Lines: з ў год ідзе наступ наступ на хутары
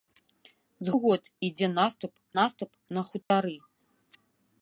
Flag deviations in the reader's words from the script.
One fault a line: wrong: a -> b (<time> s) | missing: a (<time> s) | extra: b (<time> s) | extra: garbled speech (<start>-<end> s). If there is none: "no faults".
no faults